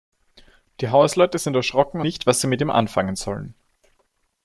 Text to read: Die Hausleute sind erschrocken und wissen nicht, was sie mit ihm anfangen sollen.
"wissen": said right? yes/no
no